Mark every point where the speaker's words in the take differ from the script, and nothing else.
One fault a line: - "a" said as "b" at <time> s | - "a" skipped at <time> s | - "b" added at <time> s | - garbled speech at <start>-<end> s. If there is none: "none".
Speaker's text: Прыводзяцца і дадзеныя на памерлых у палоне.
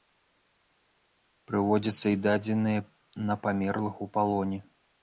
none